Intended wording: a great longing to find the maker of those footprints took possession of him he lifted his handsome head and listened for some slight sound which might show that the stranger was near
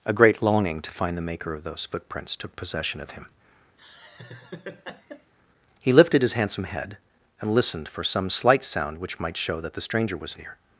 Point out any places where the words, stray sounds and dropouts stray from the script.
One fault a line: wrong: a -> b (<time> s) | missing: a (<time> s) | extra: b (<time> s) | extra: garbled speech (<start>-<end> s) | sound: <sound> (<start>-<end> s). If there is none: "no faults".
sound: laugh (3.8-5.3 s)